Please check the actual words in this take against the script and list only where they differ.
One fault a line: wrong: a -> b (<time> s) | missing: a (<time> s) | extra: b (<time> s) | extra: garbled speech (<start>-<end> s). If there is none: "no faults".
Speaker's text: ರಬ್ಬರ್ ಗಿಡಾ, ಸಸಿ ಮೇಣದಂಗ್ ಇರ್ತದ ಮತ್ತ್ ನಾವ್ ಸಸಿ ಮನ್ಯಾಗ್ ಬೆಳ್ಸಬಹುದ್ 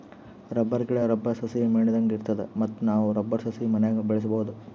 extra: ರಬ್ಬರ್ (1.0 s)
extra: ರಬ್ಬರ್ (3.1 s)